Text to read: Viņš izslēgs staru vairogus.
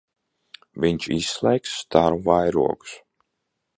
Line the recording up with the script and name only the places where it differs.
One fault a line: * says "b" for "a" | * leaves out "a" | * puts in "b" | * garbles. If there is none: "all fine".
all fine